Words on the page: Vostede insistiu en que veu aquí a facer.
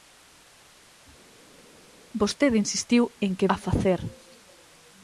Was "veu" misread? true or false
true